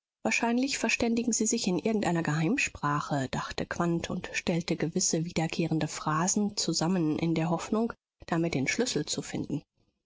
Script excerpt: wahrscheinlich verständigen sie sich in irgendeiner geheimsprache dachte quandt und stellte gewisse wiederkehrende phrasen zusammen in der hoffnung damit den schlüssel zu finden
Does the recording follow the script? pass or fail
pass